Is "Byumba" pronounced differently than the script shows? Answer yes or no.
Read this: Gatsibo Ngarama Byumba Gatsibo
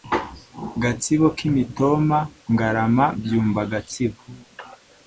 no